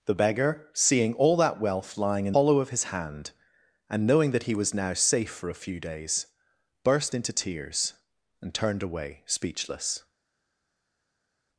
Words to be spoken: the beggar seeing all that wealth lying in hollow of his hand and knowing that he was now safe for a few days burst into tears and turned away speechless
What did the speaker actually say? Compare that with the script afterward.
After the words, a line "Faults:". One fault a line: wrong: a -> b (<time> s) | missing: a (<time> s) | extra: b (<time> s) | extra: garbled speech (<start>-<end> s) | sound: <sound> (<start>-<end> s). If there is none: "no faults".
the beggar seeing all that wealth lying in hollow of his hand and knowing that he was now safe for a few days burst into tears and turned away speechless
Faults:
no faults